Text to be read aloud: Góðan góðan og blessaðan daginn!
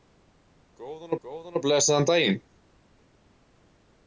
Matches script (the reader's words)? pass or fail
pass